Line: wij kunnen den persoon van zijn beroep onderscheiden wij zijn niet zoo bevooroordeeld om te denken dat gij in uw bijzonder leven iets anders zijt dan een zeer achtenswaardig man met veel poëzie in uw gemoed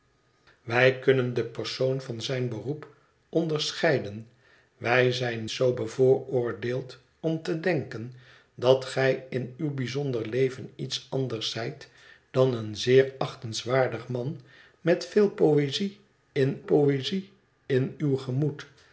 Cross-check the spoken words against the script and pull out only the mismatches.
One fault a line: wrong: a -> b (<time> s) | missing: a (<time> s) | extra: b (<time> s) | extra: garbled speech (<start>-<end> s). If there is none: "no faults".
missing: niet (5.5 s)
extra: poëzie in (16.6 s)